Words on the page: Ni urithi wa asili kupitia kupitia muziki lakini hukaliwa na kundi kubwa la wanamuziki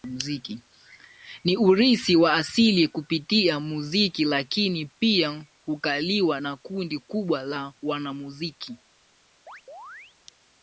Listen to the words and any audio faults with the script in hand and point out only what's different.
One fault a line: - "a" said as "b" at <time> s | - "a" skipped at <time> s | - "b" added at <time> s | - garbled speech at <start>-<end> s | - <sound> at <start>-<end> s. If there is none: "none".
- "kupitia" skipped at 3.6 s
- "pia" added at 4.8 s
- chirp at 9.5-10.2 s